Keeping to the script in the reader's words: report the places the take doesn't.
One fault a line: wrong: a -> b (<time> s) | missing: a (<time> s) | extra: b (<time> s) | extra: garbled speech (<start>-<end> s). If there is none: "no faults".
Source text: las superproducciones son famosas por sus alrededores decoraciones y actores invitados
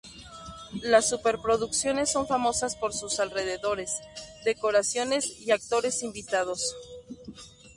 no faults